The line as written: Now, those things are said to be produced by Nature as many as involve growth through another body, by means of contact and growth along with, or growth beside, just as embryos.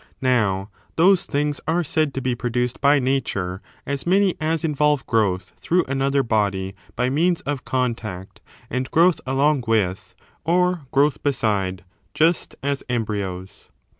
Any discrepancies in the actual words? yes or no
no